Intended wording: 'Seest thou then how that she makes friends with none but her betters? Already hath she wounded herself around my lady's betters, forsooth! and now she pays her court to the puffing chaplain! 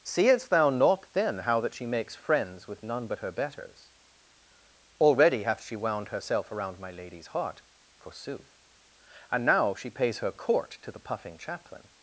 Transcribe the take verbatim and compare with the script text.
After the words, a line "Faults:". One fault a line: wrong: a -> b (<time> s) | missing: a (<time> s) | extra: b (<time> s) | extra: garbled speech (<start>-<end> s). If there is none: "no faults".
'Seest thou not then how that she makes friends with none but her betters? Already hath she wound herself around my lady's heart, forsooth! and now she pays her court to the puffing chaplain!
Faults:
extra: not (0.7 s)
wrong: wounded -> wound (5.7 s)
wrong: betters -> heart (7.3 s)